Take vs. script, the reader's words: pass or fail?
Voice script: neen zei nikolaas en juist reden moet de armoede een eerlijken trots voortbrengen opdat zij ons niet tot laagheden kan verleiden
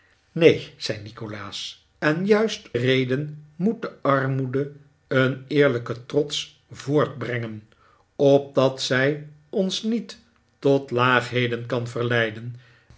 pass